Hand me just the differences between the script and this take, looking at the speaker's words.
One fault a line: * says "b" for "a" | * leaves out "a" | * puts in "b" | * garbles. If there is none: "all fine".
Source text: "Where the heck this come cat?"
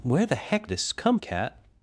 all fine